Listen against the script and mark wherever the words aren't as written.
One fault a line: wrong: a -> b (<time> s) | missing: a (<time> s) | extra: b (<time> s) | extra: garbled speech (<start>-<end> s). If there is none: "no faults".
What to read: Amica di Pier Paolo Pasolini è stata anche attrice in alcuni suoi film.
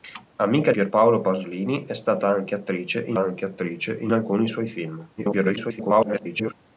missing: di (0.7 s)
extra: anche attrice in (3.2 s)
extra: garbled speech (5.2-6.5 s)